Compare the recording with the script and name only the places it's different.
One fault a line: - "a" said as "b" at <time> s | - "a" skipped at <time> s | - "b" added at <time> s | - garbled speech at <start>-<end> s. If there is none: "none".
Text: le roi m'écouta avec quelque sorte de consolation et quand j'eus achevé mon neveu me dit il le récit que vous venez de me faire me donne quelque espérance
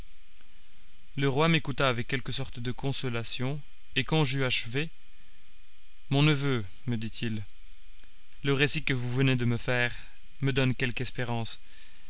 none